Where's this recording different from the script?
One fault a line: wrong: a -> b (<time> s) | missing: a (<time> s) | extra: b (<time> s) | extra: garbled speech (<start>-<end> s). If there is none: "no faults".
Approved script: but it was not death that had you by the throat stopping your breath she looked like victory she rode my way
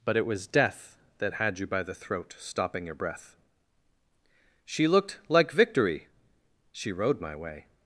missing: not (0.5 s)